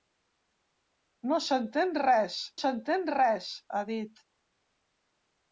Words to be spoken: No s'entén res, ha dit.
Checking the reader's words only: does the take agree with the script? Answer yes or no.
no